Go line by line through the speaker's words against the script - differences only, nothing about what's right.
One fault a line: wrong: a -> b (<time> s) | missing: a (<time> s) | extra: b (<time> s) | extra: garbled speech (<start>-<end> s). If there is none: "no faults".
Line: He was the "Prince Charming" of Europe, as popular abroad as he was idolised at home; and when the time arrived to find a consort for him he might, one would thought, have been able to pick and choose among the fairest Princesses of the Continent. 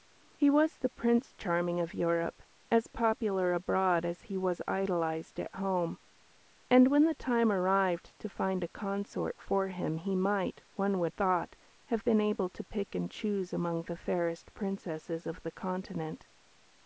no faults